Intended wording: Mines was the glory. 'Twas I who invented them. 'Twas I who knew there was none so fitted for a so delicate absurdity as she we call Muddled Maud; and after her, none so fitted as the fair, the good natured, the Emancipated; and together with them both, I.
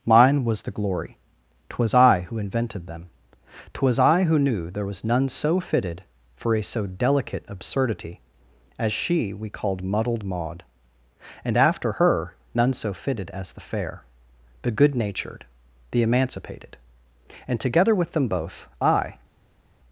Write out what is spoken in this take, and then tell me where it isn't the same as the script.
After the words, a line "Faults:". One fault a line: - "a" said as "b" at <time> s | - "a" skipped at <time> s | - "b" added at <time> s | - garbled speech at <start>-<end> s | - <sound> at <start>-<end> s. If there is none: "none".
Mine was the glory. 'Twas I who invented them. 'Twas I who knew there was none so fitted for a so delicate absurdity as she we called Muddled Maud; and after her, none so fitted as the fair, the good natured, the Emancipated; and together with them both, I.
Faults:
- "Mines" said as "Mine" at 0.1 s
- "call" said as "called" at 9.5 s